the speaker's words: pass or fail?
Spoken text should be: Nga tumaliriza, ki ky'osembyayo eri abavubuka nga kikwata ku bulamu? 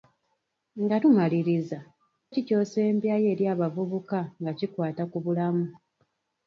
pass